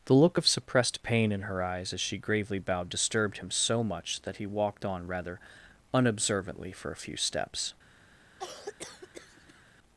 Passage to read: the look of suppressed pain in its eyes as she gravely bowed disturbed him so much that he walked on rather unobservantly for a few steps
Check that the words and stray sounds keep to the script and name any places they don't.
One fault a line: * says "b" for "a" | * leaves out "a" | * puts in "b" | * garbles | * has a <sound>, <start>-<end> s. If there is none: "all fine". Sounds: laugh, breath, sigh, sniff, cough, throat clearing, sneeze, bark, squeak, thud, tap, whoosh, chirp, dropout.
* says "her" for "its"
* has a cough, 8.4-9.6 s